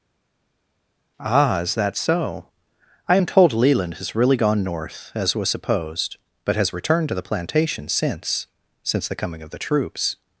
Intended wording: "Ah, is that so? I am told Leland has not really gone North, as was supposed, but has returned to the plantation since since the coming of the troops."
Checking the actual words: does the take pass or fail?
fail